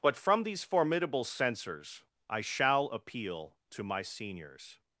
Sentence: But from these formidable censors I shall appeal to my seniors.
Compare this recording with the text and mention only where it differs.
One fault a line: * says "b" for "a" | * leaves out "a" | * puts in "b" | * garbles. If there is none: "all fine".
all fine